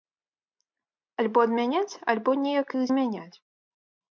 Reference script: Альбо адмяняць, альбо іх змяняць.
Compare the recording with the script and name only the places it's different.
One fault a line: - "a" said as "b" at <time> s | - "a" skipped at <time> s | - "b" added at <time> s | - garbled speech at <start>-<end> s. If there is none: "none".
- "неяк" added at 2.5 s